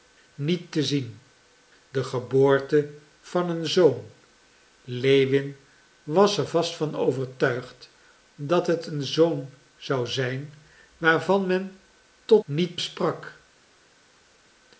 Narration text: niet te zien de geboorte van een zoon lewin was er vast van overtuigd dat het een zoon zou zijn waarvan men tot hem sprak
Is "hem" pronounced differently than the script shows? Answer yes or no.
yes